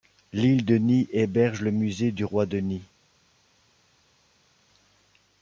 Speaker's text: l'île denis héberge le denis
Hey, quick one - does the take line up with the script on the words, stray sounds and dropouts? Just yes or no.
no